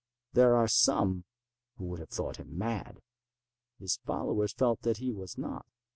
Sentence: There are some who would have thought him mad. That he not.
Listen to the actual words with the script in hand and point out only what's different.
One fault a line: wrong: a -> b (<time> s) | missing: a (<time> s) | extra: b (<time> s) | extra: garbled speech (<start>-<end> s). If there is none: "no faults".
extra: His followers felt (3.8 s)
extra: was (5.1 s)